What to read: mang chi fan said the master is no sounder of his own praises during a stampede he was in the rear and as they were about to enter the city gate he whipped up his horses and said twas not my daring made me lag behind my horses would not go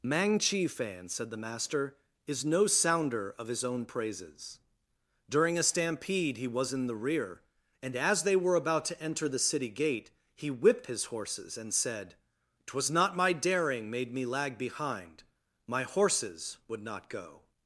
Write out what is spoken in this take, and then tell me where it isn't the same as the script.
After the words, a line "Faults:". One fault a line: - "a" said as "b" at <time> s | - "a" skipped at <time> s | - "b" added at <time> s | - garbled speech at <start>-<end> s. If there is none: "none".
mang chi fan said the master is no sounder of his own praises during a stampede he was in the rear and as they were about to enter the city gate he whipped his horses and said twas not my daring made me lag behind my horses would not go
Faults:
- "up" skipped at 10.9 s